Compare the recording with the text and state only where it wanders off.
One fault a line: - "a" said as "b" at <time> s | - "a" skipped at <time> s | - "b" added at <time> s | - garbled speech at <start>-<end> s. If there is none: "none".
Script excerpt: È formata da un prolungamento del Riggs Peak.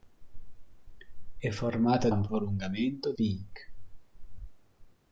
- "da" skipped at 2.1 s
- "del Riggs" skipped at 3.1 s